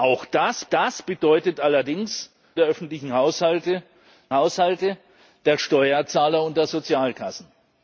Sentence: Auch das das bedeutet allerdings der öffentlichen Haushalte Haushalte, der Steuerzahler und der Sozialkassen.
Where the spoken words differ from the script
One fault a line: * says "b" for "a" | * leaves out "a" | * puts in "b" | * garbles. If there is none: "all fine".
all fine